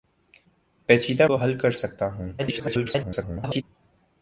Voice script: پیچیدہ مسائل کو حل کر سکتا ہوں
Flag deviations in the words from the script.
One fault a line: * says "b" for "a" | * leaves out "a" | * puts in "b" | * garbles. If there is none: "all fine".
* leaves out "مسائل"
* garbles